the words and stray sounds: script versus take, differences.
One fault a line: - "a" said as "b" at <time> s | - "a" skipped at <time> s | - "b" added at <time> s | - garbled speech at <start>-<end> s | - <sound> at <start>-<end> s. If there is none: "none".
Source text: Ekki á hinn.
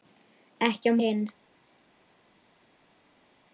none